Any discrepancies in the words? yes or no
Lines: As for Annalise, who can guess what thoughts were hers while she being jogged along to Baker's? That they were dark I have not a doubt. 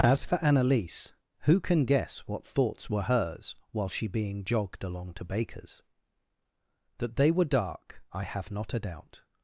no